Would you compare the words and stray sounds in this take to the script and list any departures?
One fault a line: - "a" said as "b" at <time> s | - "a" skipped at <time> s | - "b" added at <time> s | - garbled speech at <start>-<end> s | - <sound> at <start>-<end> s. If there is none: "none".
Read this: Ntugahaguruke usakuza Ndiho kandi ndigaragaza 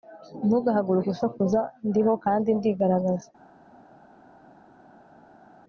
none